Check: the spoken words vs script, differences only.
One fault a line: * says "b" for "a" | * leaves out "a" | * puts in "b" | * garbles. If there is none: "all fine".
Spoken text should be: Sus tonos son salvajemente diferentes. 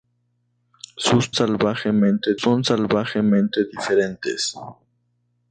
* says "salvajemente" for "tonos"